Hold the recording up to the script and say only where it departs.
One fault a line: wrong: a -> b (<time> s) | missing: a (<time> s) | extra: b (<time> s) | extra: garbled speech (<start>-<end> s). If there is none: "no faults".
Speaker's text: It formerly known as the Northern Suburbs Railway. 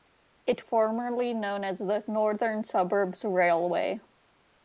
no faults